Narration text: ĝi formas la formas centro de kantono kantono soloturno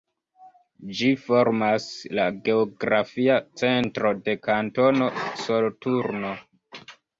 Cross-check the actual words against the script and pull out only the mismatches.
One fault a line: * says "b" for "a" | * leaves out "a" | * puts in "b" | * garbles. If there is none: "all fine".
* says "geografia" for "formas"
* leaves out "kantono"